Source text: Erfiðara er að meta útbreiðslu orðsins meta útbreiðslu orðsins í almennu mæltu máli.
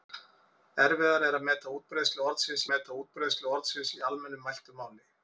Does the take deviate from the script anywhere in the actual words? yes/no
no